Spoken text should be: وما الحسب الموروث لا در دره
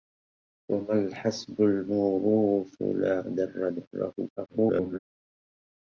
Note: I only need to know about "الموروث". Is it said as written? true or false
true